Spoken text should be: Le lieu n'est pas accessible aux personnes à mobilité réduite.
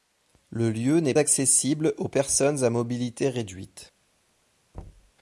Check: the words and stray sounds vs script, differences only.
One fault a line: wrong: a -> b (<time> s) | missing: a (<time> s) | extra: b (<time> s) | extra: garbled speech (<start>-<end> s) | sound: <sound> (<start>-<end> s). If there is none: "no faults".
missing: pas (1.1 s)
sound: thud (4.7-5.1 s)